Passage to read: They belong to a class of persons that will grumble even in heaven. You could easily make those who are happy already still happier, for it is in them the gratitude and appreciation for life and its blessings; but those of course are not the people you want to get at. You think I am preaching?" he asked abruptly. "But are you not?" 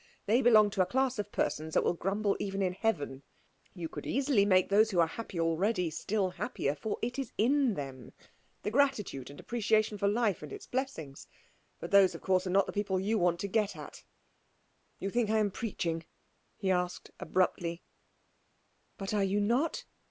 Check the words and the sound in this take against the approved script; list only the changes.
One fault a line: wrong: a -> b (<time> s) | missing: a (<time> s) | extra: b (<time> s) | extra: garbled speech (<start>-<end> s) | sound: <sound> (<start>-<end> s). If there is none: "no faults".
no faults